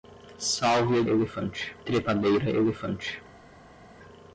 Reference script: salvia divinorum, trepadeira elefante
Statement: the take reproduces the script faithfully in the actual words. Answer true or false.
false